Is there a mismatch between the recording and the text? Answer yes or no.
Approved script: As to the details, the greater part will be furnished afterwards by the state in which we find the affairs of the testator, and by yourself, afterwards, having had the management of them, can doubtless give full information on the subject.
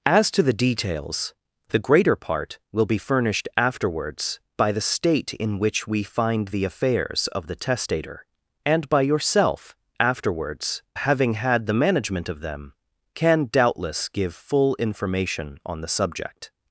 no